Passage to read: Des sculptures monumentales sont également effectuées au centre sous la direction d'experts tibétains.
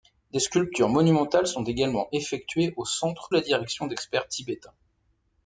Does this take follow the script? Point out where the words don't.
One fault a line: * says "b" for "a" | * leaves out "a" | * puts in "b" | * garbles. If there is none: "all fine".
* leaves out "sous"